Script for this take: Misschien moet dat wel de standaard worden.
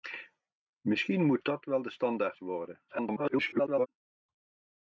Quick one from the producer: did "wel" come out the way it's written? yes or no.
yes